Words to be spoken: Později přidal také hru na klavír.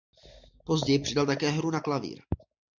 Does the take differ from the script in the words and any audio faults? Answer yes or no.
no